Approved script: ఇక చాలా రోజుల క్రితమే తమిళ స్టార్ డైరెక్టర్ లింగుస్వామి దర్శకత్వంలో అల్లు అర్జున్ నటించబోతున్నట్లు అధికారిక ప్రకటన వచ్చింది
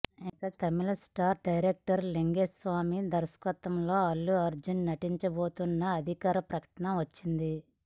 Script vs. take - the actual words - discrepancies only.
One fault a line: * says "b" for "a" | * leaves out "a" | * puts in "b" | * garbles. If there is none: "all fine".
* leaves out "చాలా రోజుల క్రితమే"